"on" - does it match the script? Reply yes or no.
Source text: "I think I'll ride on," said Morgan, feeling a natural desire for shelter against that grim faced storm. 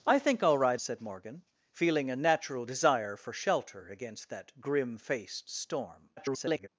no